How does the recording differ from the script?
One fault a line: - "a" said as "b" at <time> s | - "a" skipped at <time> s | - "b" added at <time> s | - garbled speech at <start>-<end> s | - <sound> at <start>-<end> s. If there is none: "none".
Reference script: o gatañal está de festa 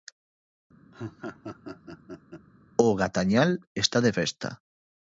- laugh at 0.9-2.5 s